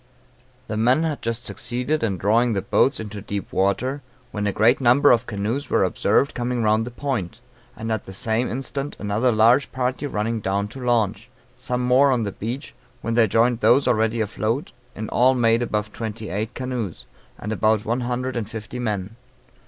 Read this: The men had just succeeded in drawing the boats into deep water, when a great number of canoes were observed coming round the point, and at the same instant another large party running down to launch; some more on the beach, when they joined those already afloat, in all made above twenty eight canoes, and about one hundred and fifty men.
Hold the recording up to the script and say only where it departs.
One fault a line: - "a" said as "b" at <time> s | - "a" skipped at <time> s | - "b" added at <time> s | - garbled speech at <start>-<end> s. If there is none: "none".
none